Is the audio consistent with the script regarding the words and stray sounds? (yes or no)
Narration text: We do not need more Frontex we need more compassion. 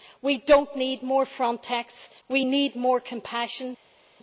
yes